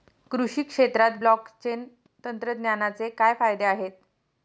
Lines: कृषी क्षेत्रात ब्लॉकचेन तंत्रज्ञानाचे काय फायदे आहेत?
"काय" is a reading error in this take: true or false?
false